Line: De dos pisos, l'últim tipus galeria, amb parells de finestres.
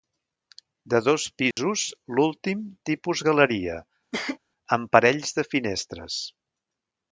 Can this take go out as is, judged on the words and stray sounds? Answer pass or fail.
fail